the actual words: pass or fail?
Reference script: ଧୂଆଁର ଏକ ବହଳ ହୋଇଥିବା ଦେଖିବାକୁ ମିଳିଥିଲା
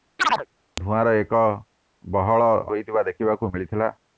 pass